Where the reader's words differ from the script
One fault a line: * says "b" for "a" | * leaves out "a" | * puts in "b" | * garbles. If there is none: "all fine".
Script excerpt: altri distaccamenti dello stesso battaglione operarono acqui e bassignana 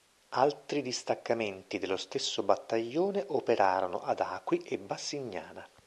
* puts in "ad"